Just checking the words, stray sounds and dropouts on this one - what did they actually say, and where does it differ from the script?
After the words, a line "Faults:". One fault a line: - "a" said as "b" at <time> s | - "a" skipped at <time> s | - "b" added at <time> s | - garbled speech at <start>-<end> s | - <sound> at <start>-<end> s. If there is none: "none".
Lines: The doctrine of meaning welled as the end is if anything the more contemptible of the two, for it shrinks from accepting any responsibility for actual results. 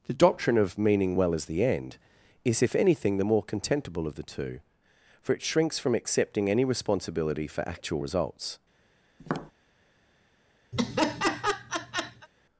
The doctrine of meaning well as the end is if anything the more contemptible of the two, for it shrinks from accepting any responsibility for actual results.
Faults:
- "welled" said as "well" at 1.2 s
- tap at 9.2-9.5 s
- laugh at 10.7-12.3 s